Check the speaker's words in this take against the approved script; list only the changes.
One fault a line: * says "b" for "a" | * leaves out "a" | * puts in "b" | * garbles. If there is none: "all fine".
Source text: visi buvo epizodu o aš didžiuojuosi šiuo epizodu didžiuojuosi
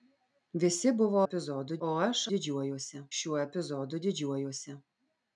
all fine